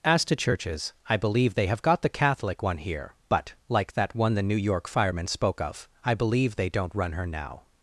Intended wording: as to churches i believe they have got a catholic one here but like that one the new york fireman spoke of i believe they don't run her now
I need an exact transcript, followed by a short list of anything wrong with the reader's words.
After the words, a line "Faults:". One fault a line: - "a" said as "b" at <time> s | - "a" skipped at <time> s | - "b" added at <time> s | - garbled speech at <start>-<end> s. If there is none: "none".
as to churches i believe they have got the catholic one here but like that one the new york fireman spoke of i believe they don't run her now
Faults:
- "a" said as "the" at 2.0 s